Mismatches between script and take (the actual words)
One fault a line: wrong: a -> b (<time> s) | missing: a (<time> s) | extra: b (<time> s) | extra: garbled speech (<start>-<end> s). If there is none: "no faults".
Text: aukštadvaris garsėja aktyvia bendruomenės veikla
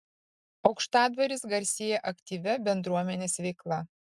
no faults